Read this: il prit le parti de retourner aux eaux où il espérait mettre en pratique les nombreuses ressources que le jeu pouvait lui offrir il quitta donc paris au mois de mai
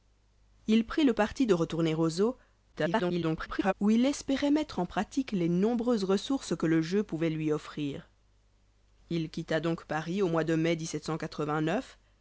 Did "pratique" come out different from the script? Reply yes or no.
no